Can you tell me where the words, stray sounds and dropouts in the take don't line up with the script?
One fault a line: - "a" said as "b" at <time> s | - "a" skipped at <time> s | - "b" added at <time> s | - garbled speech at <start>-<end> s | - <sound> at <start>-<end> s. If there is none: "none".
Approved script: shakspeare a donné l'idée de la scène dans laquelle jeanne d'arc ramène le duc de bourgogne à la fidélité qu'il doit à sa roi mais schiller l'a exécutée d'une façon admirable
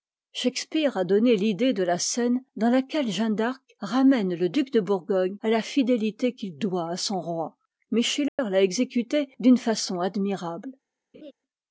- "sa" said as "son" at 7.0 s
- dropout at 8.3-8.4 s
- laugh at 11.1-11.3 s